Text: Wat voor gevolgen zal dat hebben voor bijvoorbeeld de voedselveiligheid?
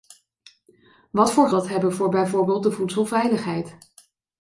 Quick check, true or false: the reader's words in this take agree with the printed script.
false